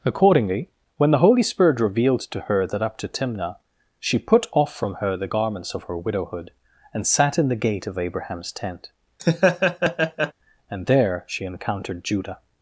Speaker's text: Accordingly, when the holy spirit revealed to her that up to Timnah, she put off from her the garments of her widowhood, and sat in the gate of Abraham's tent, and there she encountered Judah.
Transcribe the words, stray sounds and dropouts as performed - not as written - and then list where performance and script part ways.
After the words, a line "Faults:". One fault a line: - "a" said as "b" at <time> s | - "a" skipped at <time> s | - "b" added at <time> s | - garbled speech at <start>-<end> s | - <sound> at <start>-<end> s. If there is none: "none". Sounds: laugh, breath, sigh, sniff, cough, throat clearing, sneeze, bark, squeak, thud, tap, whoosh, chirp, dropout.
Accordingly, when the holy spirit revealed to her that up to Timnah, she put off from her the garments of her widowhood, and sat in the gate of Abraham's tent, and there she encountered Judah.
Faults:
- laugh at 9.2-10.3 s